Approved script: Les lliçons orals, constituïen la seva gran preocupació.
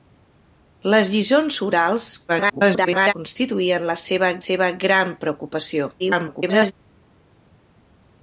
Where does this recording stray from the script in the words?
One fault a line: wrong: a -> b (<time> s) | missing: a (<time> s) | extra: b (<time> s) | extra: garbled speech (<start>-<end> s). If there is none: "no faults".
extra: garbled speech (2.3-3.1 s)
extra: seva (4.4 s)
extra: garbled speech (6.0-6.7 s)